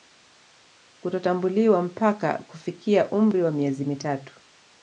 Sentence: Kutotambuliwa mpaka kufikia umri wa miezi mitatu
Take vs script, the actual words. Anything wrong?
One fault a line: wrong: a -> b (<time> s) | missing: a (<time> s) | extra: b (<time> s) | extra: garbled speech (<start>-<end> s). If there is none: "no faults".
no faults